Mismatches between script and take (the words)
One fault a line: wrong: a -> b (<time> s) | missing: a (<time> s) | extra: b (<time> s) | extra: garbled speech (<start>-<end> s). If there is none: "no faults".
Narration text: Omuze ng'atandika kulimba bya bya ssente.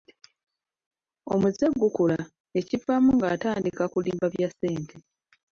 extra: gukula ekivaamu (1.8 s)
missing: bya (4.5 s)